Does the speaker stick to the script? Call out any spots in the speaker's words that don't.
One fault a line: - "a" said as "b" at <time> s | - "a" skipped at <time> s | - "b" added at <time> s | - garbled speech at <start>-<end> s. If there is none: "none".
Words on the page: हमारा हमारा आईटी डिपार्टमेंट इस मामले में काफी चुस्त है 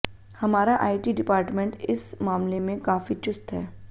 - "हमारा" skipped at 0.8 s